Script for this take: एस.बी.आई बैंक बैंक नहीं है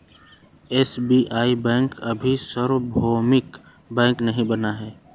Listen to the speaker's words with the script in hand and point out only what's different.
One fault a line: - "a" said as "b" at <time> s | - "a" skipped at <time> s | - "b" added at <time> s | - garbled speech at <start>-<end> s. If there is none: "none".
- "अभी सार्वभौमिक" added at 2.0 s
- "बना" added at 4.5 s